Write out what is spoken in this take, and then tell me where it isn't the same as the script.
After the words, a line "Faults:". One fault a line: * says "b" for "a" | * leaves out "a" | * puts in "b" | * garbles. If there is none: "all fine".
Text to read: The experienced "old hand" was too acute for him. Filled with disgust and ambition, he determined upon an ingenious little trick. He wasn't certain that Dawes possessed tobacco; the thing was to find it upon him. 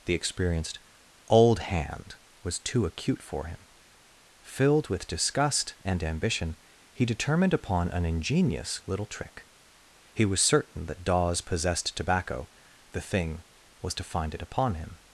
The experienced "old hand" was too acute for him. Filled with disgust and ambition, he determined upon an ingenious little trick. He was certain that Dawes possessed tobacco; the thing was to find it upon him.
Faults:
* says "was" for "wasn't"